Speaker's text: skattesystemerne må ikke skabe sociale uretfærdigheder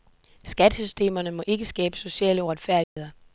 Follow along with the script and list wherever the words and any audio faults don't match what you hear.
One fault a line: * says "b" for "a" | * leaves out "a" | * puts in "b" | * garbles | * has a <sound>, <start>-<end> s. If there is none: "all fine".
* has a dropout, 2.8-3.0 s